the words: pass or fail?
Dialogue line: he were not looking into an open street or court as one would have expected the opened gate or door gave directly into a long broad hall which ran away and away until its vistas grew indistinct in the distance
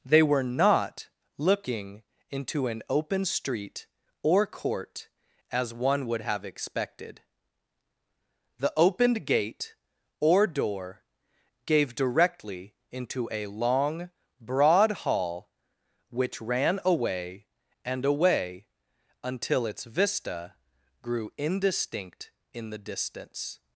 fail